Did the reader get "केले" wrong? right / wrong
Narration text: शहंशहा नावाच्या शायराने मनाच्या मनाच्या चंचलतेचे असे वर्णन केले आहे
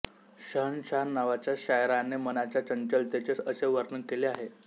right